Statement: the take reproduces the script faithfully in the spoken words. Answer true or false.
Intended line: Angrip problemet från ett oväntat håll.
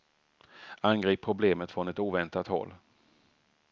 true